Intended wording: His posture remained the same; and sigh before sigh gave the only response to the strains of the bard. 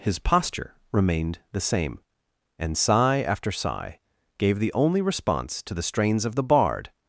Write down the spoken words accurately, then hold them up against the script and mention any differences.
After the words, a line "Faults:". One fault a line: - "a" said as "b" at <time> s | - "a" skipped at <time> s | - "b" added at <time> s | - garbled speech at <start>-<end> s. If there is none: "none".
His posture remained the same; and sigh after sigh gave the only response to the strains of the bard.
Faults:
- "before" said as "after" at 3.2 s